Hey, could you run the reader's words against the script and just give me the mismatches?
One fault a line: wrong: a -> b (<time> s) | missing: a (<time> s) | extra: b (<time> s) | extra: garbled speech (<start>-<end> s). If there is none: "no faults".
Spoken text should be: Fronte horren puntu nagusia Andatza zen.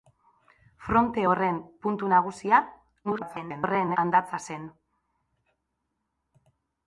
extra: garbled speech (3.0-4.0 s)